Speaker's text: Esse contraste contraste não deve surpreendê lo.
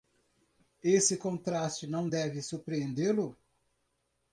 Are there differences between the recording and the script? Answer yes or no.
yes